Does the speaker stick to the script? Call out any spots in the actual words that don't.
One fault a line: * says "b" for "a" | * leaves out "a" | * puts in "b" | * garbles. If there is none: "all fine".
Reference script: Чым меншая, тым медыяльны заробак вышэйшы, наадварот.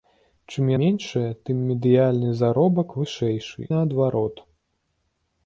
all fine